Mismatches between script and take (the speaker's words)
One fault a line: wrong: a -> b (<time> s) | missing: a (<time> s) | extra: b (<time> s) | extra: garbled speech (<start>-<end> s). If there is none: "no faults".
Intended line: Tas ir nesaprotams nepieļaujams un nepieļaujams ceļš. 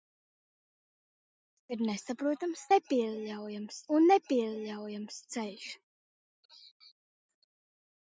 no faults